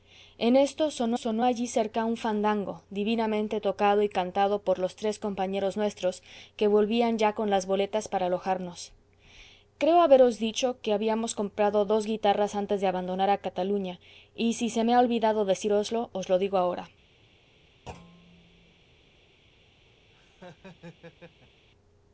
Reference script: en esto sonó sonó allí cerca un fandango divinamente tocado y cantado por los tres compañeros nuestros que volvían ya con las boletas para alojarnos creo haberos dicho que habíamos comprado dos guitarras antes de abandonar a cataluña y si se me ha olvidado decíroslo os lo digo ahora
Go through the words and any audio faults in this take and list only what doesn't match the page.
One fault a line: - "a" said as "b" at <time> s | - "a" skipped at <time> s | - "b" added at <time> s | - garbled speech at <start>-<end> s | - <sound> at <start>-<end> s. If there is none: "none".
- thud at 17.9-18.8 s
- laugh at 20.1-21.7 s